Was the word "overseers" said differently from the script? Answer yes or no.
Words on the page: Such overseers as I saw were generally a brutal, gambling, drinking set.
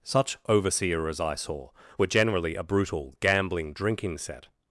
yes